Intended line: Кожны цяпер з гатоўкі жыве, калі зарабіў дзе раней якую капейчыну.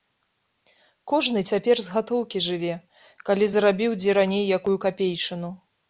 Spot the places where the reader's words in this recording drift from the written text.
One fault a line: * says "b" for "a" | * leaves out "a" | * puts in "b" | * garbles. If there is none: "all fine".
all fine